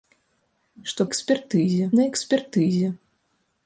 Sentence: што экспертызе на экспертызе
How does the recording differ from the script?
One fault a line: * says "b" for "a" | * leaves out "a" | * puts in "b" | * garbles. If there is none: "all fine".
all fine